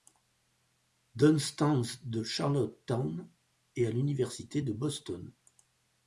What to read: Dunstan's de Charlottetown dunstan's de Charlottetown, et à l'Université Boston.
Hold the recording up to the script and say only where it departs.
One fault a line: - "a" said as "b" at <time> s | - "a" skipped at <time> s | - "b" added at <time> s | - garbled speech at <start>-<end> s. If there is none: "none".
- "dunstan's de Charlottetown" skipped at 3.3 s
- "de" added at 4.6 s